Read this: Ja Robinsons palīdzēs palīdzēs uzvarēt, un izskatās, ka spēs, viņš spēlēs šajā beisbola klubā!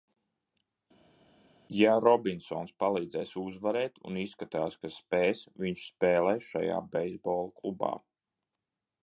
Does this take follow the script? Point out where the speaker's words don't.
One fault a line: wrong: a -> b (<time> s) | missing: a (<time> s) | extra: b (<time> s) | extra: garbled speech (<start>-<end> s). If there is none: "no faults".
missing: palīdzēs (3.3 s)